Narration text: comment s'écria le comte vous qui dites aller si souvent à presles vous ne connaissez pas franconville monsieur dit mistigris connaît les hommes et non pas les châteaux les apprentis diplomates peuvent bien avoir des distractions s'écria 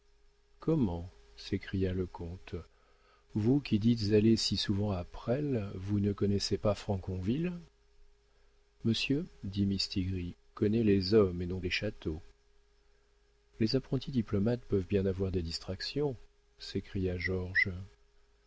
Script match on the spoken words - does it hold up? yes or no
no